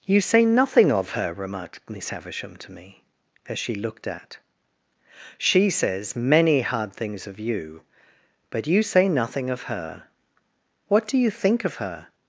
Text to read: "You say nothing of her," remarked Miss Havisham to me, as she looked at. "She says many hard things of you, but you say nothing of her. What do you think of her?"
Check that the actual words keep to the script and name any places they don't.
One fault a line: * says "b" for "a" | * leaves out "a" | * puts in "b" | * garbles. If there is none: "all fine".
all fine